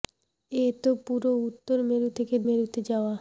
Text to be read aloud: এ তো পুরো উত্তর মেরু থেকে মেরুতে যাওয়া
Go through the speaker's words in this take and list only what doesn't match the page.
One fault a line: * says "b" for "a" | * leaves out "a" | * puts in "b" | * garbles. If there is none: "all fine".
all fine